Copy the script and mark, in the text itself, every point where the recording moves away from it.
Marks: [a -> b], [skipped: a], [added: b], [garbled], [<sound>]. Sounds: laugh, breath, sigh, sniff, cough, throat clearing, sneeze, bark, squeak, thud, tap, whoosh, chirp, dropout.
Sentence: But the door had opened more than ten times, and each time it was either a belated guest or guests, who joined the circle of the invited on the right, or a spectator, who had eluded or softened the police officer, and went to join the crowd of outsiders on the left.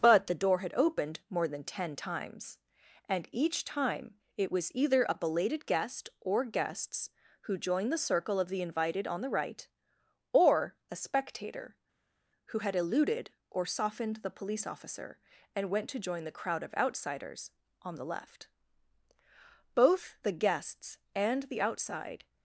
But the door had opened more than ten times, and each time it was either a belated guest or guests, who joined the circle of the invited on the right, or a spectator, who had eluded or softened the police officer, and went to join the crowd of outsiders on the left. [added: Both the guests and the outside]